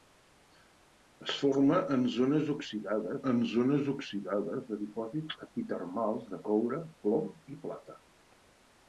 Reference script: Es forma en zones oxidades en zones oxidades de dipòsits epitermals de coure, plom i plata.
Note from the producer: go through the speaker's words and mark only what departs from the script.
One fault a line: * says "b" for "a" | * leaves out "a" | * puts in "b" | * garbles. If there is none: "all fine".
all fine